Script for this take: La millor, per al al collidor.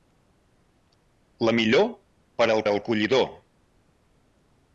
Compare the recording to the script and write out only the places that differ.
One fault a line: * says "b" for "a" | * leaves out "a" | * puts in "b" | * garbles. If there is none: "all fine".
all fine